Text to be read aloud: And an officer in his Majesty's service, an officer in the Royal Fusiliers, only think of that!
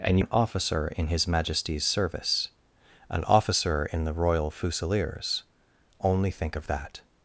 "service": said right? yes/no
yes